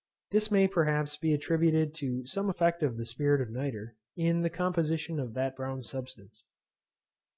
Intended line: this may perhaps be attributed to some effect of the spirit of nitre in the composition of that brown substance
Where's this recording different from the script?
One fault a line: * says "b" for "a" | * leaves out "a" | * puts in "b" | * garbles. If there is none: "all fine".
all fine